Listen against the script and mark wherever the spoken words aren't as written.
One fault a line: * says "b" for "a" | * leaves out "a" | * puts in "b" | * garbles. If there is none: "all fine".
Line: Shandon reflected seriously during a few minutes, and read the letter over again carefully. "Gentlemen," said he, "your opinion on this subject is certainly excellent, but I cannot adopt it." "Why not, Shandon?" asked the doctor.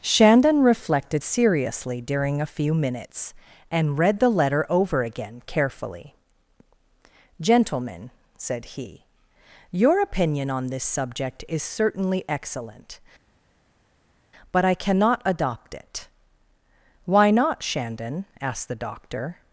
all fine